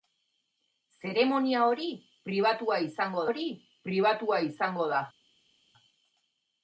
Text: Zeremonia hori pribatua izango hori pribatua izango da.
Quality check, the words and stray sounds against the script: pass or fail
pass